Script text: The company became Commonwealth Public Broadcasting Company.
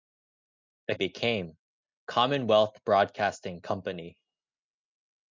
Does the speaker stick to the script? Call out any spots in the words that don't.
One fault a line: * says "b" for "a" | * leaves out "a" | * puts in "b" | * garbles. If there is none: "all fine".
* leaves out "company"
* leaves out "Public"